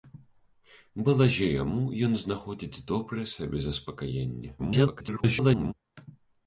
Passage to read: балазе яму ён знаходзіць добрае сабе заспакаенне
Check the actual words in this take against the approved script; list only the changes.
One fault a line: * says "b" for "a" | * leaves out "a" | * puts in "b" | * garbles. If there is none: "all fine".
* garbles